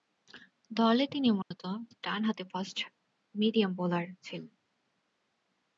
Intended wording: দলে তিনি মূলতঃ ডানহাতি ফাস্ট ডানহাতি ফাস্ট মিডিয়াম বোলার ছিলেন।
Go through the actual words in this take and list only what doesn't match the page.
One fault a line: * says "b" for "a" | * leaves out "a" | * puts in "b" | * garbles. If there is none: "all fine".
* leaves out "ডানহাতি ফাস্ট"